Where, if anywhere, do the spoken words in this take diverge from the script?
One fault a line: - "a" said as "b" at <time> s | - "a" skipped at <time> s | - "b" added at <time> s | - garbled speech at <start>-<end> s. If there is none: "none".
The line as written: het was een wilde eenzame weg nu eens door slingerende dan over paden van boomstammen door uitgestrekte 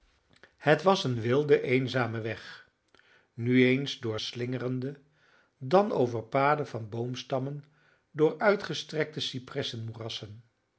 none